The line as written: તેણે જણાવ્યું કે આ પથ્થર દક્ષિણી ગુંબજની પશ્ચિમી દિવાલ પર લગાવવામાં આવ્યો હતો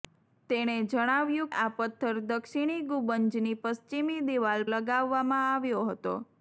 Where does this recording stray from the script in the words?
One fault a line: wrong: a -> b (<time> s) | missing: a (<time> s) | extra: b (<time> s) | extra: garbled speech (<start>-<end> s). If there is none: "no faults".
missing: કે (1.5 s)
missing: પર (4.7 s)